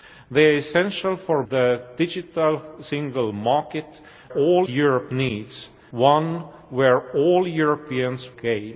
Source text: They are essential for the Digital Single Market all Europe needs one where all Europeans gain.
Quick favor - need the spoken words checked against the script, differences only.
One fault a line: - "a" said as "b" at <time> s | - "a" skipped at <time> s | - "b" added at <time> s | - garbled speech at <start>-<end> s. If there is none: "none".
none